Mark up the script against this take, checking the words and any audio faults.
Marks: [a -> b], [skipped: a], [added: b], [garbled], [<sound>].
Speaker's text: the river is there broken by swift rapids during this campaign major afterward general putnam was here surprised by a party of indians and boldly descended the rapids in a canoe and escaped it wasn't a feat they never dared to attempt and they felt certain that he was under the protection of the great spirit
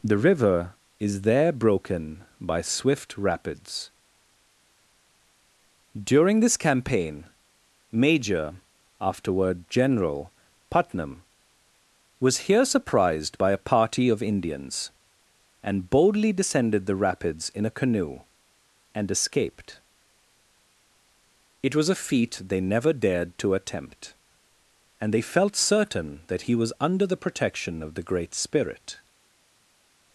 the river is there broken by swift rapids during this campaign major afterward general putnam was here surprised by a party of indians and boldly descended the rapids in a canoe and escaped it [wasn't -> was] a feat they never dared to attempt and they felt certain that he was under the protection of the great spirit